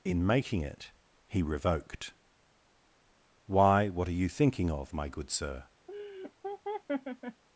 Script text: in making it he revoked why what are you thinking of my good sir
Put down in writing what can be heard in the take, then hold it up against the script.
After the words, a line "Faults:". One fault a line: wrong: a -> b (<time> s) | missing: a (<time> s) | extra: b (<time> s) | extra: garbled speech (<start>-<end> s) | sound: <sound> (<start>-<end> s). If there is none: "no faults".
in making it he revoked why what are you thinking of my good sir
Faults:
sound: laugh (5.9-7.4 s)